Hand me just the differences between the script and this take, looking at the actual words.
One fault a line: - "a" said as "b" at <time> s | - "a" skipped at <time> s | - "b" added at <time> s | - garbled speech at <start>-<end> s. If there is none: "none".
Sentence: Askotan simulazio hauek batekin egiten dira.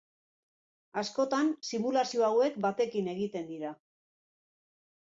none